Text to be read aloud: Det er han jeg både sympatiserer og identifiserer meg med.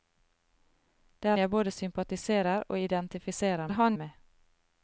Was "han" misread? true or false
true